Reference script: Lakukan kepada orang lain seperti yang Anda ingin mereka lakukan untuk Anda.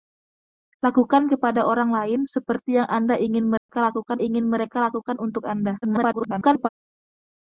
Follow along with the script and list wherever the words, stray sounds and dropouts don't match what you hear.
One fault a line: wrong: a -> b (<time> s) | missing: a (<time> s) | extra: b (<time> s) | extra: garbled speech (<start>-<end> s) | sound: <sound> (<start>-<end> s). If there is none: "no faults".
sound: dropout (3.6-3.7 s)
extra: ingin mereka lakukan (4.2 s)
extra: garbled speech (5.8-6.7 s)